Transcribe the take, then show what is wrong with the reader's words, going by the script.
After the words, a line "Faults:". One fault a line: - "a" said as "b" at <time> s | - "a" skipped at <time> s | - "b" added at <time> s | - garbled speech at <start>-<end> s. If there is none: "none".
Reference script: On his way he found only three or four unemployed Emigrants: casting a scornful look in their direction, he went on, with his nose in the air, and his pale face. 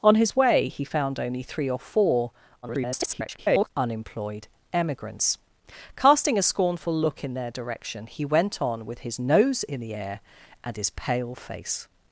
On his way he found only three or four [garbled] unemployed Emigrants: casting a scornful look in their direction, he went on, with his nose in the air, and his pale face.
Faults:
- garbled speech at 2.6-3.7 s